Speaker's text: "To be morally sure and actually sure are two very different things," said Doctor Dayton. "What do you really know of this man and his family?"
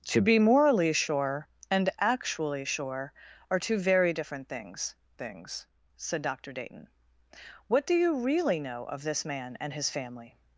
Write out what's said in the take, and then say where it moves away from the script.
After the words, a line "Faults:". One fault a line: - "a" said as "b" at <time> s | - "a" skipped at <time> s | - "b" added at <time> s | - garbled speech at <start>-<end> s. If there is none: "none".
"To be morally sure and actually sure are two very different things things," said Doctor Dayton. "What do you really know of this man and his family?"
Faults:
- "things" added at 5.2 s